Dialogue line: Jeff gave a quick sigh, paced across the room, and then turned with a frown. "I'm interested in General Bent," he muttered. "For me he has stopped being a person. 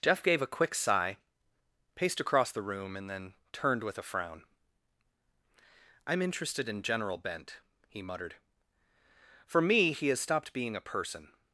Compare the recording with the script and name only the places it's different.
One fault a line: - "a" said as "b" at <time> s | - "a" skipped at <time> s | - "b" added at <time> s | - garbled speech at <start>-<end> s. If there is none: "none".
none